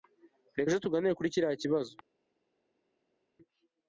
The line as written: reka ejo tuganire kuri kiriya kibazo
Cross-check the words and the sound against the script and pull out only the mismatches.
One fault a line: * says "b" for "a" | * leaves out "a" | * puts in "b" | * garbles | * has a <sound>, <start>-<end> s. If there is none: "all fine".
all fine